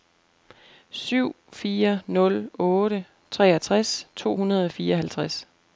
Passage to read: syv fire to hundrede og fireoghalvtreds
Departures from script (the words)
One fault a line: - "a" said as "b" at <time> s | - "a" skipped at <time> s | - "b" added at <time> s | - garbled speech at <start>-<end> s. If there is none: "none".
- "nul otte treogtres" added at 2.1 s